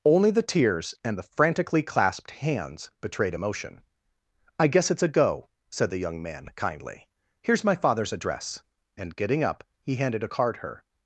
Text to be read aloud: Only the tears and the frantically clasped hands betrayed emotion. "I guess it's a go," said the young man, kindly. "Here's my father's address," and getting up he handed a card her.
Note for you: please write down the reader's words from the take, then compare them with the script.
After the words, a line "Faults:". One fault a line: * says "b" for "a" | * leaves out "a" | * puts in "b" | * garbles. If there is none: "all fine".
Only the tears and the frantically clasped hands betrayed emotion. "I guess it's a go," said the young man, kindly. "Here's my father's address," and getting up he handed a card her.
Faults:
all fine